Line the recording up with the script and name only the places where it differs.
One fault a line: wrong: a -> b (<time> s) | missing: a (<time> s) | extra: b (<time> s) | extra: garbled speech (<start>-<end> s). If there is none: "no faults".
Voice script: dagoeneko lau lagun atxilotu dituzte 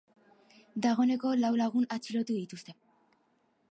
no faults